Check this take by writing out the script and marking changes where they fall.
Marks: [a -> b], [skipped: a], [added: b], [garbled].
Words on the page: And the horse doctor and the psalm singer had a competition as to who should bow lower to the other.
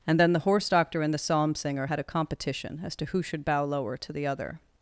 And [added: then] the horse doctor and the psalm singer had a competition as to who should bow lower to the other.